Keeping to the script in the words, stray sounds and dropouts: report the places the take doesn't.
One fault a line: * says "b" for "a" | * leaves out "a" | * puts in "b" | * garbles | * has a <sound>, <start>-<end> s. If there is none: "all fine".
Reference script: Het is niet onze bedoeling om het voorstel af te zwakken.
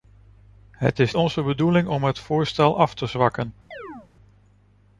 * leaves out "niet"
* has a chirp, 3.7-4.1 s